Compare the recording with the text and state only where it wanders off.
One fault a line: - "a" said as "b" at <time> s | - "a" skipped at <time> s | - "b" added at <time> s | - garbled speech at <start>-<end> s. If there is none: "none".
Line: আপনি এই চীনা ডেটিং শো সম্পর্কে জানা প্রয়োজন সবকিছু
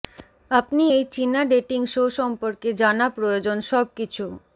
none